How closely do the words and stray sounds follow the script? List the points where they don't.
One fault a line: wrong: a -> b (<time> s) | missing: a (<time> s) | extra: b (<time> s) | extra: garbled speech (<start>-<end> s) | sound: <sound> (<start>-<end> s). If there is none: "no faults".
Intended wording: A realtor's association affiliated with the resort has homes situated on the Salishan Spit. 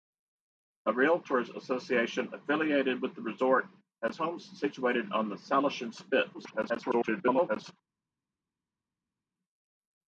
extra: garbled speech (6.3-7.7 s)